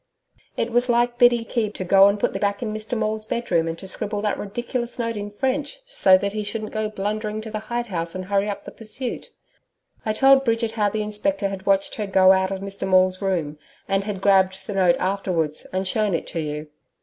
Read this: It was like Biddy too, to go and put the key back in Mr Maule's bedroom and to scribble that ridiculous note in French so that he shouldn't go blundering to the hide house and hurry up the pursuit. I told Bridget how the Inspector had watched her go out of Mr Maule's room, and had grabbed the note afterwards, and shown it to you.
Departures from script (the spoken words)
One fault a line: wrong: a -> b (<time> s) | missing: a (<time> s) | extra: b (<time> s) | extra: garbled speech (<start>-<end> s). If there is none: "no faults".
wrong: too -> key (1.4 s)
missing: key (2.4 s)